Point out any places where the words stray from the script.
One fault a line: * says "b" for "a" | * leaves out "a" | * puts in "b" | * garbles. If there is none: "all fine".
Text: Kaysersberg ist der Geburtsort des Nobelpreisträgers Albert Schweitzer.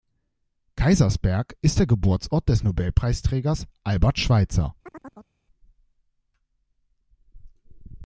all fine